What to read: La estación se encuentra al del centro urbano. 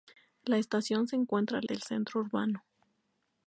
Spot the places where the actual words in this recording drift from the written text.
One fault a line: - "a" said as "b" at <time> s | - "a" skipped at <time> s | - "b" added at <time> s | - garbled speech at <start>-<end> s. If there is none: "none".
none